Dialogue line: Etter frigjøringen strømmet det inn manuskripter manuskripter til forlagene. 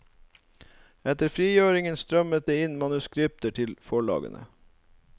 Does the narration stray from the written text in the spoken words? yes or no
yes